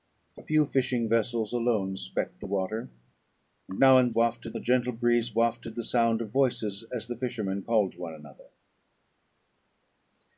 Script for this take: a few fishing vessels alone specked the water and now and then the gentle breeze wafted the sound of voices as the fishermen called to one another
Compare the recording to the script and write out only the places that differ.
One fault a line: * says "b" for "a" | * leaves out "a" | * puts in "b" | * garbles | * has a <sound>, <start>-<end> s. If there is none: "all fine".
* says "wafted" for "then"